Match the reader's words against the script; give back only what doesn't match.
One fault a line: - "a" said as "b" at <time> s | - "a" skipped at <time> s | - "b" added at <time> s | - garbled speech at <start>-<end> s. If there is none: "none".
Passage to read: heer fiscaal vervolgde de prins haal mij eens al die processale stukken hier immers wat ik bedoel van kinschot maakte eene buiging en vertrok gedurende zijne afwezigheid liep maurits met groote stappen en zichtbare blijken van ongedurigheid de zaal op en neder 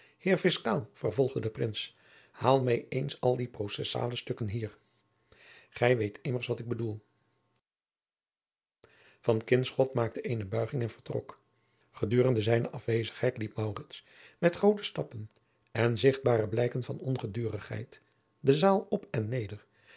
- "gij weet" added at 5.7 s